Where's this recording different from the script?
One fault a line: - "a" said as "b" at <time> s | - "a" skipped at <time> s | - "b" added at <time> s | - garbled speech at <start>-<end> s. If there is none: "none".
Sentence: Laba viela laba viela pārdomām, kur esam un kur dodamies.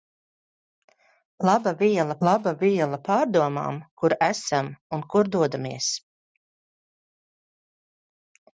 none